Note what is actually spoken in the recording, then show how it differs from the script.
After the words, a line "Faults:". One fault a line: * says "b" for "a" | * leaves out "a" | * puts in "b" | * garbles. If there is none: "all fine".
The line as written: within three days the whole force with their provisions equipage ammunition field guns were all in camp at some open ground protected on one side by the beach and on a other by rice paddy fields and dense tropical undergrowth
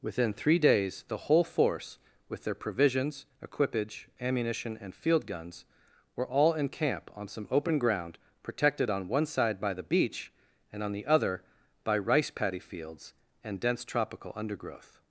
within three days the whole force with their provisions equipage ammunition and field guns were all in camp on some open ground protected on one side by the beach and on the other by rice paddy fields and dense tropical undergrowth
Faults:
* puts in "and"
* says "on" for "at"
* says "the" for "a"